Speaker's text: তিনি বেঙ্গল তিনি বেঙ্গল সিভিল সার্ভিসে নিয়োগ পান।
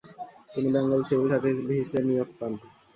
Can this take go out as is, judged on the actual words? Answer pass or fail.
fail